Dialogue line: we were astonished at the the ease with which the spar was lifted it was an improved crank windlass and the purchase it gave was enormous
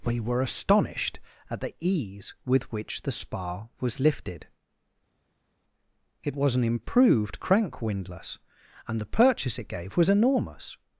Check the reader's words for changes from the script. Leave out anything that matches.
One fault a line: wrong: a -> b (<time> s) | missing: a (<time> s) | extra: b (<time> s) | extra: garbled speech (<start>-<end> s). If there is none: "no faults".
missing: the (1.7 s)